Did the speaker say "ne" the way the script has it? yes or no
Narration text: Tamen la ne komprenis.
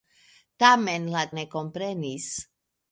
yes